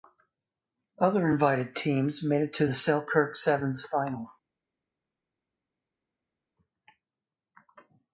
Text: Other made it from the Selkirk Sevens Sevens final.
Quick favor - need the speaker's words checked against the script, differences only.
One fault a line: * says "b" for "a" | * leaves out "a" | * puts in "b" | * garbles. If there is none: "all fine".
* puts in "invited teams"
* says "to" for "from"
* leaves out "Sevens"